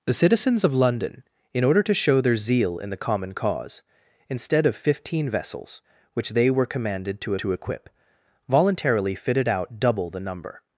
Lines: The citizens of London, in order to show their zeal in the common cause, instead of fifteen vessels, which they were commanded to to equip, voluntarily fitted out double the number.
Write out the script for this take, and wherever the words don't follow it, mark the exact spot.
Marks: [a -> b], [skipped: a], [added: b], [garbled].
The citizens of London, in order to show their zeal in the common cause, instead of fifteen vessels, which they were commanded to to equip, voluntarily fitted out double the number.